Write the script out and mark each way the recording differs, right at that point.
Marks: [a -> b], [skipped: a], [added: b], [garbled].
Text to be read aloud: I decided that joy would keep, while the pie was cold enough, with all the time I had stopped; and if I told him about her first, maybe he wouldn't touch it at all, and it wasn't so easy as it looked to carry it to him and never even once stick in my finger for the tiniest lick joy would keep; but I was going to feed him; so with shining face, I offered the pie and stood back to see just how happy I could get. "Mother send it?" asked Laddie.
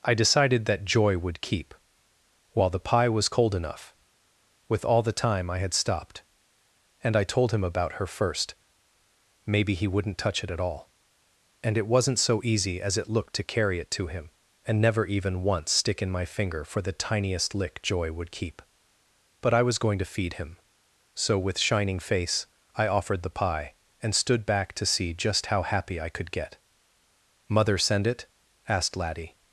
I decided that joy would keep, while the pie was cold enough, with all the time I had stopped; and [skipped: if] I told him about her first, maybe he wouldn't touch it at all, and it wasn't so easy as it looked to carry it to him and never even once stick in my finger for the tiniest lick joy would keep; but I was going to feed him; so with shining face, I offered the pie and stood back to see just how happy I could get. "Mother send it?" asked Laddie.